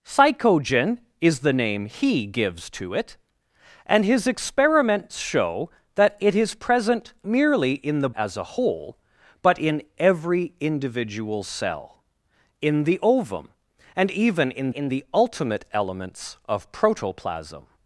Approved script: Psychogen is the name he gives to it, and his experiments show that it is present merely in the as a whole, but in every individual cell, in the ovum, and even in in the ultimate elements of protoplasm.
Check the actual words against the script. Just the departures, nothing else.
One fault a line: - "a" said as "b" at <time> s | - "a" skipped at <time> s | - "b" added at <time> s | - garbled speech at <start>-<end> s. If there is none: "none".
none